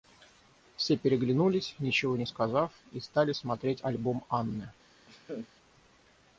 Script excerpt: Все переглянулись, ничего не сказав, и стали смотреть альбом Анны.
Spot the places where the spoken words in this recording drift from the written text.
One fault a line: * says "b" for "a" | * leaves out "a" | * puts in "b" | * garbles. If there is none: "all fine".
all fine